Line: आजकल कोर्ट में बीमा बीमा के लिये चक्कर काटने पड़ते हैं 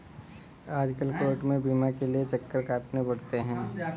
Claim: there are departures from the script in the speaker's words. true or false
true